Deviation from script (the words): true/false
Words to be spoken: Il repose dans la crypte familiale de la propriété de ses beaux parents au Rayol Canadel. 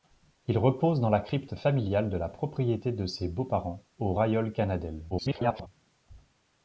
true